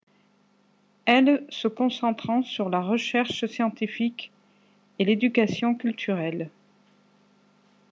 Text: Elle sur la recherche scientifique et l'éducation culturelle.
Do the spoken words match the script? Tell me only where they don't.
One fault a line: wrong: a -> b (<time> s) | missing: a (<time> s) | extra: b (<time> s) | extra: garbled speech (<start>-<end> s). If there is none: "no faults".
extra: se concentrant (1.5 s)